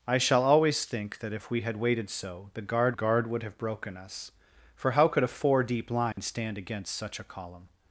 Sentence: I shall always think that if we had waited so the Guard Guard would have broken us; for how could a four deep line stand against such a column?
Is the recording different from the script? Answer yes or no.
no